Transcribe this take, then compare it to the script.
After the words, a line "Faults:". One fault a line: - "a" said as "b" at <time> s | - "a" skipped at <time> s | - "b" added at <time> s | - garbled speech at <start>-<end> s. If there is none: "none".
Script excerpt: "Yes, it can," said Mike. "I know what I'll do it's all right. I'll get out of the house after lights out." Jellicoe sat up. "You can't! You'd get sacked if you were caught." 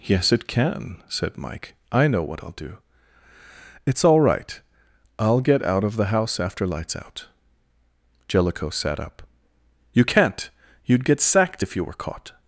"Yes, it can," said Mike. "I know what I'll do it's all right. I'll get out of the house after lights out." Jellicoe sat up. "You can't! You'd get sacked if you were caught."
Faults:
none